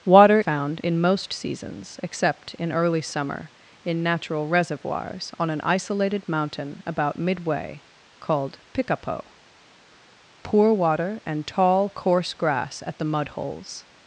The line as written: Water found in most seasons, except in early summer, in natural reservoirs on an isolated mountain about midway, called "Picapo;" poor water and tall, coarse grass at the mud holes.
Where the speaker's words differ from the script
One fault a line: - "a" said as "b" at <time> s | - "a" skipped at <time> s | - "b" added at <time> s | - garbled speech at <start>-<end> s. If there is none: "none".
none